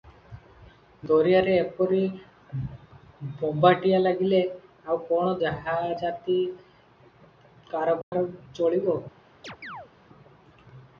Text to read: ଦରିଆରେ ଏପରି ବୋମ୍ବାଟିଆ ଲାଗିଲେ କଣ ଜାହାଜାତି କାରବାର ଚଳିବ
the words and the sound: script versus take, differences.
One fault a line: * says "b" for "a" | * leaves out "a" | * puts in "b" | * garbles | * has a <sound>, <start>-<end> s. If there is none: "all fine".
* puts in "ଆଉ"
* has a dropout, 8.0-8.1 s
* has a chirp, 9.4-9.9 s